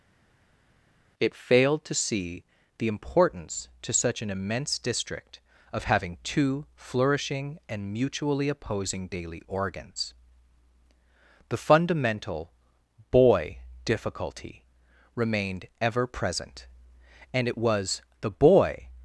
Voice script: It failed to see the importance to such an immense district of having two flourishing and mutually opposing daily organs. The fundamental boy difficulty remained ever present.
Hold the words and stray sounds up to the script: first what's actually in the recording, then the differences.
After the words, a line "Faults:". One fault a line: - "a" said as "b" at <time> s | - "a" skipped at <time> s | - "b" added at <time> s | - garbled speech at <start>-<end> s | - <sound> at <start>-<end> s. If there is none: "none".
It failed to see the importance to such an immense district of having two flourishing and mutually opposing daily organs. The fundamental boy difficulty remained ever present. And it was the boy
Faults:
- "And it was the boy" added at 17.3 s